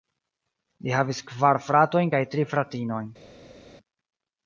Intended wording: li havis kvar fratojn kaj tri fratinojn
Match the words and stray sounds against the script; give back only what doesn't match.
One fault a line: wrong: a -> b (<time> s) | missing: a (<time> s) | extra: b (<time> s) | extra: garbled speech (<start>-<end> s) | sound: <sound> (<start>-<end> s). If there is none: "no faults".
no faults